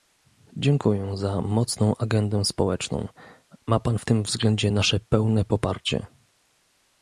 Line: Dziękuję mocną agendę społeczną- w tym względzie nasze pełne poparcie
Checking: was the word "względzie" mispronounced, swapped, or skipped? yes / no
no